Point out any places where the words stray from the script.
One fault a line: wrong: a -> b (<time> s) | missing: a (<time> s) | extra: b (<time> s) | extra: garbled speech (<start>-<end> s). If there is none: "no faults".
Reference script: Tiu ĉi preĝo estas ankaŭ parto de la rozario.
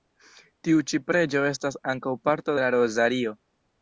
no faults